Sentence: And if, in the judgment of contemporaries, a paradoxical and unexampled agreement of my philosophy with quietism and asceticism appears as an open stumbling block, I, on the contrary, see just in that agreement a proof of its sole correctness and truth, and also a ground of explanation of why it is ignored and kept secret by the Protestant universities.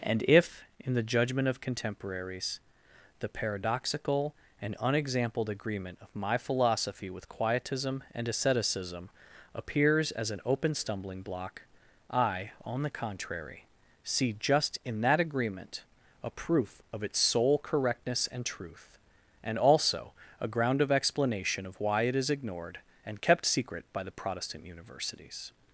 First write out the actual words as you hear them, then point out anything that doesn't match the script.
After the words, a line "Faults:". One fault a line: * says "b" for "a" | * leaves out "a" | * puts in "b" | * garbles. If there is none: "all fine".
And if, in the judgment of contemporaries, the paradoxical and unexampled agreement of my philosophy with quietism and asceticism appears as an open stumbling block, I, on the contrary, see just in that agreement a proof of its sole correctness and truth, and also a ground of explanation of why it is ignored and kept secret by the Protestant universities.
Faults:
* says "the" for "a"